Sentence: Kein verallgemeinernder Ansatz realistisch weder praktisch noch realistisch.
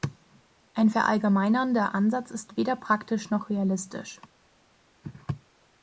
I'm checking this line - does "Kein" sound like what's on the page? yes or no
no